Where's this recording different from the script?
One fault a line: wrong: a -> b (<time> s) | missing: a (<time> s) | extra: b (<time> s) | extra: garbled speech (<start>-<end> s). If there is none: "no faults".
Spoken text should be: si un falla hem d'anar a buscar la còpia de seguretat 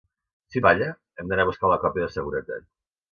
no faults